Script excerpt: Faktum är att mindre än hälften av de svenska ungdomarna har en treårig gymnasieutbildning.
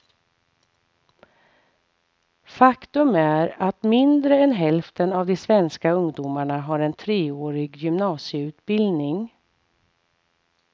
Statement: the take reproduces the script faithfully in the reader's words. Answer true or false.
true